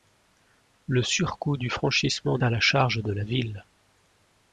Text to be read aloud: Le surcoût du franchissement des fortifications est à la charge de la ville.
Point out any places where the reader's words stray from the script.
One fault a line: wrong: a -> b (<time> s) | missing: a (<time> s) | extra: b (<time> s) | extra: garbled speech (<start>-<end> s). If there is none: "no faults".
missing: des fortifications est (2.4 s)